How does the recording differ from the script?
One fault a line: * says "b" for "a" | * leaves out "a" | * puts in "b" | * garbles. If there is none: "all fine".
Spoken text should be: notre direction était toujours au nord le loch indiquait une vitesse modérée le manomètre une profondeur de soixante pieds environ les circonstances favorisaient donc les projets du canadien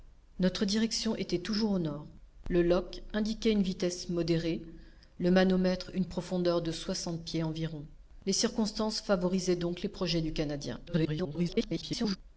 * garbles